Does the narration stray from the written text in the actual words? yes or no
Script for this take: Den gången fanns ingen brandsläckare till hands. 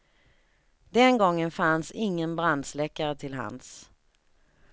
no